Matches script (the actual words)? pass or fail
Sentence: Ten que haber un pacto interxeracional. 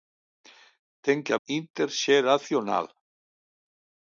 fail